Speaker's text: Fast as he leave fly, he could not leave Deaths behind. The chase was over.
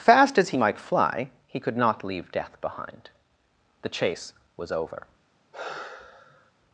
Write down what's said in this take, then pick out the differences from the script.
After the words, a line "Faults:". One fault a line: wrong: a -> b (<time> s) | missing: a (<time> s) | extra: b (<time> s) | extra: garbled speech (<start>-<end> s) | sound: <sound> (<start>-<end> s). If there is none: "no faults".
Fast as he might fly, he could not leave Death behind. The chase was over.
Faults:
wrong: leave -> might (0.6 s)
wrong: Deaths -> Death (2.3 s)
sound: sigh (5.5-6.5 s)